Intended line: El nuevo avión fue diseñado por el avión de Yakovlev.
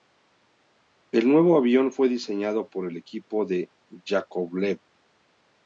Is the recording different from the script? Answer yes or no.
yes